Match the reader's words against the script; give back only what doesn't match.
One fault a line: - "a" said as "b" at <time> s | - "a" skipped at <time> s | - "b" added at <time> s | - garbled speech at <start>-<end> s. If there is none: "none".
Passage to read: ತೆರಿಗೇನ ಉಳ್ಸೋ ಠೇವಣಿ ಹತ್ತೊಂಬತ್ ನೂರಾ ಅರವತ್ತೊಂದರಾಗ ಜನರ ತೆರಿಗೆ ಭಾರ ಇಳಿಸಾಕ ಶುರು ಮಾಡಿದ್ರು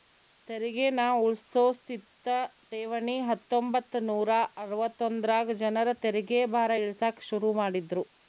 - "ಸ್ಥಿತ" added at 1.7 s